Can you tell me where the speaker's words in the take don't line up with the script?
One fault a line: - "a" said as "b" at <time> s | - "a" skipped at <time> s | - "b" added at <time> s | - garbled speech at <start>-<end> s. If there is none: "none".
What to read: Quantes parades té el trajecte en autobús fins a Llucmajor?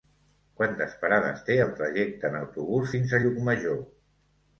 none